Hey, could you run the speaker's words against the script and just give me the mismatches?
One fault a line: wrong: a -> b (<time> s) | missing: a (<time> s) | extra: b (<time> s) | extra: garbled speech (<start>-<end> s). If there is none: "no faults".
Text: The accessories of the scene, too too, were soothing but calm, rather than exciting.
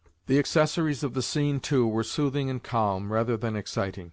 missing: too (1.9 s)
wrong: but -> and (2.5 s)